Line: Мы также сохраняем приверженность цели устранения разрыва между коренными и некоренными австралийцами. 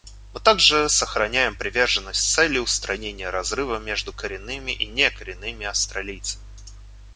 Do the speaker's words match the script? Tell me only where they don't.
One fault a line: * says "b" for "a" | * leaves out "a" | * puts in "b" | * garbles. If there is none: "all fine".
all fine